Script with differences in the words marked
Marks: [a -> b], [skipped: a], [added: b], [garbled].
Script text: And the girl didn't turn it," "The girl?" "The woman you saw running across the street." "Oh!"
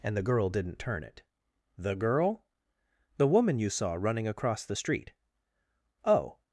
And the girl didn't turn it," "The girl?" "The woman you saw running across the street." "Oh!"